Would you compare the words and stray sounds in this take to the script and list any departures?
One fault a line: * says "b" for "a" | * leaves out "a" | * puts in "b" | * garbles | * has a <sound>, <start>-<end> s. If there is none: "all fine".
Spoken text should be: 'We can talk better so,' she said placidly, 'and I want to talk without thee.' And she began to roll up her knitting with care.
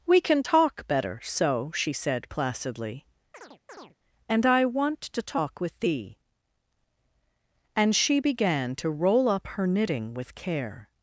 * has a chirp, 3.3-4.0 s
* says "with" for "without"